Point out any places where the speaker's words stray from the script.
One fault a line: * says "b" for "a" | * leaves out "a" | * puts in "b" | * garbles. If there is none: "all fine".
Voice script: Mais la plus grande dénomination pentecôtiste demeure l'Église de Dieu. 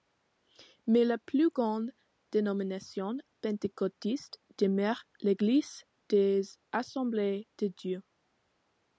* puts in "des Assemblées"